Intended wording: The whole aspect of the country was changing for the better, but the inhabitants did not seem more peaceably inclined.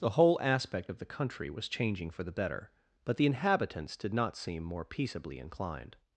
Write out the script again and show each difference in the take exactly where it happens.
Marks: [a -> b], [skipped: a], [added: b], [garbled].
The whole aspect of the country was changing for the better, but the inhabitants did not seem more peaceably inclined.